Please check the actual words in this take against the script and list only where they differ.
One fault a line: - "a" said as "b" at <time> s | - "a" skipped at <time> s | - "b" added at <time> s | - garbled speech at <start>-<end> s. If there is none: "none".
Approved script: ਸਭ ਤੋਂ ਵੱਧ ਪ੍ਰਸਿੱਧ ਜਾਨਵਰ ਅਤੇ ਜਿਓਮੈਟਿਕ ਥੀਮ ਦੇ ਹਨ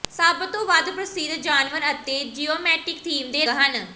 none